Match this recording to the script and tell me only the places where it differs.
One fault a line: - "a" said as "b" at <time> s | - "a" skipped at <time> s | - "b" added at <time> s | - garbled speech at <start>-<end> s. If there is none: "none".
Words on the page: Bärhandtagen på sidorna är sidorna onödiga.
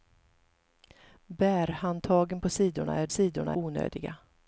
none